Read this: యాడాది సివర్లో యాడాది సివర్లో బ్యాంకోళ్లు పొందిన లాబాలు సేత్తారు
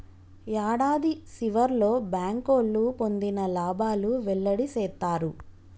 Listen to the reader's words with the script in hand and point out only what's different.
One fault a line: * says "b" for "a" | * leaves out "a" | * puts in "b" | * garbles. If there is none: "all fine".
* leaves out "యాడాది సివర్లో"
* puts in "వెల్లడి"